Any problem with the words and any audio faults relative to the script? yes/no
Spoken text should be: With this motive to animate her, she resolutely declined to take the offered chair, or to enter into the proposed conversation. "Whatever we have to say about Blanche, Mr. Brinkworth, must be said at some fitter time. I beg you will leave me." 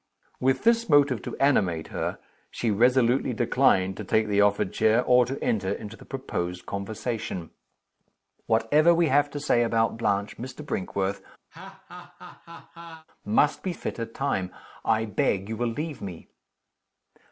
yes